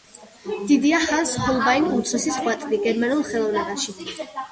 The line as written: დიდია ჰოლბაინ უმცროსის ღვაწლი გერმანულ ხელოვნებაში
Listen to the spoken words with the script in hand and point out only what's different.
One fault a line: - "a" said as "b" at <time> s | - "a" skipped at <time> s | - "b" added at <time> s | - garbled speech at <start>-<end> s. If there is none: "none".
- "ჰანს" added at 1.0 s